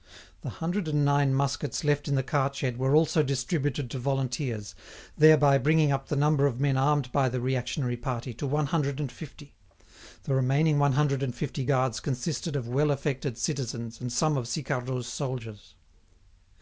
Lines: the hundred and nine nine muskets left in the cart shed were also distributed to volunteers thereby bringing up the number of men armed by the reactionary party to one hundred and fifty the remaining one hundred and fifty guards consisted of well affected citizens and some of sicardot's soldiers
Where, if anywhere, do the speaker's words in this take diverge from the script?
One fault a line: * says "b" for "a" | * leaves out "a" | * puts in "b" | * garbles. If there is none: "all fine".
* leaves out "nine"